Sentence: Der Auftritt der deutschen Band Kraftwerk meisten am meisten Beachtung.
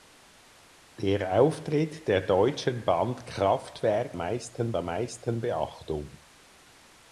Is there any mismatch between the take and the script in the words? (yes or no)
no